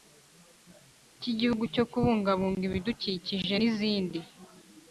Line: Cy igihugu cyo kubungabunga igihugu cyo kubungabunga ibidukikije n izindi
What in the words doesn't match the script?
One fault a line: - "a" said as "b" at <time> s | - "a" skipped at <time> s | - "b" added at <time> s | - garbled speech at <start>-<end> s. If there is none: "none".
- "igihugu cyo kubungabunga" skipped at 2.6 s